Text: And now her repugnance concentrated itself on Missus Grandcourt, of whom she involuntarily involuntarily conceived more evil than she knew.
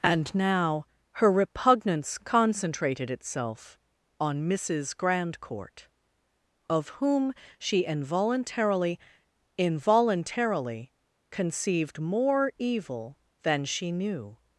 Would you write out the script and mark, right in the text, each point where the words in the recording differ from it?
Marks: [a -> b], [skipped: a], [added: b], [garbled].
And now her repugnance concentrated itself on Missus Grandcourt, of whom she involuntarily involuntarily conceived more evil than she knew.